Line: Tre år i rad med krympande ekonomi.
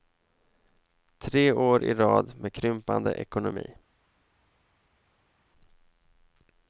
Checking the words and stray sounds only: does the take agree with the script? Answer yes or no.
yes